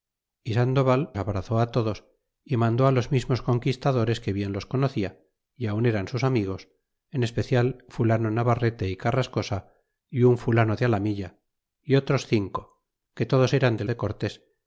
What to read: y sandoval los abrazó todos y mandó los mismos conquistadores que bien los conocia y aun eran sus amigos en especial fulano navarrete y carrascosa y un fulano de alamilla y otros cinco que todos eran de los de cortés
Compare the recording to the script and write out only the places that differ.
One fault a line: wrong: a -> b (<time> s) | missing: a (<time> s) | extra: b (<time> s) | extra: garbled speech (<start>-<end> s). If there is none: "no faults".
missing: los (1.1 s)
missing: los (13.8 s)